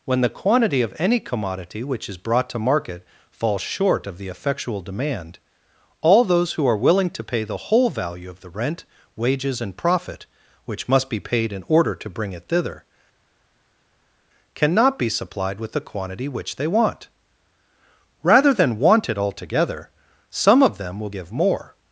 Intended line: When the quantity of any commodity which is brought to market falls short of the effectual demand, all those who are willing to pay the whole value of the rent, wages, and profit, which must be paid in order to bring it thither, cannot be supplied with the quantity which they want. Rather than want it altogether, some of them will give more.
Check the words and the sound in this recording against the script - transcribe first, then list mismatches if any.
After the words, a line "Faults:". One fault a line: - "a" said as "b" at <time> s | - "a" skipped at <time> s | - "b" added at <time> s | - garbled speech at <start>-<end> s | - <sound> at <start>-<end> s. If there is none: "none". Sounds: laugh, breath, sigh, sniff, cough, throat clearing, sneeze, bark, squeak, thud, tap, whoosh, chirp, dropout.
When the quantity of any commodity which is brought to market falls short of the effectual demand, all those who are willing to pay the whole value of the rent, wages, and profit, which must be paid in order to bring it thither, cannot be supplied with the quantity which they want. Rather than want it altogether, some of them will give more.
Faults:
none